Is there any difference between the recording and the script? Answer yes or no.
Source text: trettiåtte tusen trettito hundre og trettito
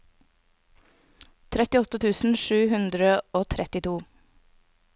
yes